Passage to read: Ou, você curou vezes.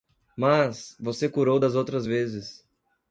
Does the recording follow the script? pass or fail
fail